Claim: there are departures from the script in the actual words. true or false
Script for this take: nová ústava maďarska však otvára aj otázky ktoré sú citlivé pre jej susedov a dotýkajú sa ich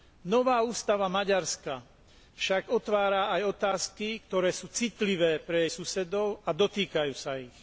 false